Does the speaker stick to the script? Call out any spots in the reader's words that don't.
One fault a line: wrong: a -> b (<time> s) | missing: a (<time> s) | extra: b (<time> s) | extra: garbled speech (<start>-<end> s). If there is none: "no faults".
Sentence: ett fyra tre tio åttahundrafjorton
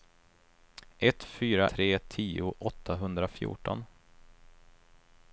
no faults